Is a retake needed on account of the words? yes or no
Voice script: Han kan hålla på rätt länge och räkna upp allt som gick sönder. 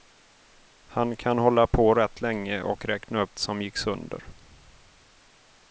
yes